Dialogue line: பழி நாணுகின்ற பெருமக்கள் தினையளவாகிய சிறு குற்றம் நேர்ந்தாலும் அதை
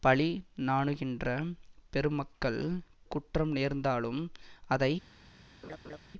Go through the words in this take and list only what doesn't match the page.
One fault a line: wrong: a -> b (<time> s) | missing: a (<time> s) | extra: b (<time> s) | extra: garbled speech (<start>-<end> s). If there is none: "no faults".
missing: தினையளவாகிய சிறு (2.6 s)